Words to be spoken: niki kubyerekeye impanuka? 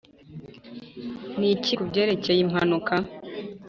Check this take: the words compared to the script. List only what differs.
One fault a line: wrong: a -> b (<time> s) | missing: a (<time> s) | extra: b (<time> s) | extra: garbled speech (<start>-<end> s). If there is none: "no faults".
no faults